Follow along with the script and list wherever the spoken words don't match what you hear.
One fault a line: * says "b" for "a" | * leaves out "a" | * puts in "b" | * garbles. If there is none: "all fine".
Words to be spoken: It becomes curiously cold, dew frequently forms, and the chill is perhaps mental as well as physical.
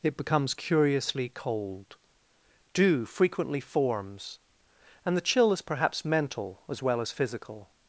all fine